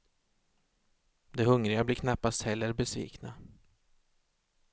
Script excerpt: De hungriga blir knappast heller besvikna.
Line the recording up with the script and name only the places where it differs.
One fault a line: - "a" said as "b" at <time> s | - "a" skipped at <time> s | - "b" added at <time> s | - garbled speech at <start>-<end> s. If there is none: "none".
none